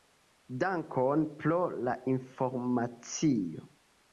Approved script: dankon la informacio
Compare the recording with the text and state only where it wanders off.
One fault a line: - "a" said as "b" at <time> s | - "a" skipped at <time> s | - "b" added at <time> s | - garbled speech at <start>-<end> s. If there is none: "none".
- "pro" added at 1.4 s